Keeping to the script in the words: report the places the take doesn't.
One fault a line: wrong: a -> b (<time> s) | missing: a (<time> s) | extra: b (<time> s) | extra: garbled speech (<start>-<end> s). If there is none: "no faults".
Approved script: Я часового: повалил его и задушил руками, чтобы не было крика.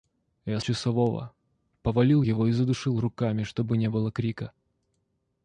no faults